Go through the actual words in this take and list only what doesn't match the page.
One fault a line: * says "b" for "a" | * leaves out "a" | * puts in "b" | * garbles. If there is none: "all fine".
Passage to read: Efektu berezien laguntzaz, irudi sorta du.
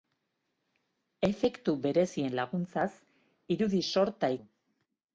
all fine